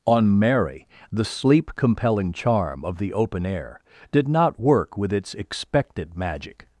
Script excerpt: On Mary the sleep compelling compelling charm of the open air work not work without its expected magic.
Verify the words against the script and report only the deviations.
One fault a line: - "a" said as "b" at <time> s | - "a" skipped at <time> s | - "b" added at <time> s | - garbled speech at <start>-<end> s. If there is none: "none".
- "compelling" skipped at 2.3 s
- "work" said as "did" at 4.1 s
- "without" said as "with" at 5.0 s